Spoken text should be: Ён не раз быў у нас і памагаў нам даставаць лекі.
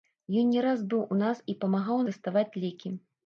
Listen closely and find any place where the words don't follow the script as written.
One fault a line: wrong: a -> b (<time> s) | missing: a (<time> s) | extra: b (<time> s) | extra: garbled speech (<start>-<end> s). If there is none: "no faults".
missing: нам (2.0 s)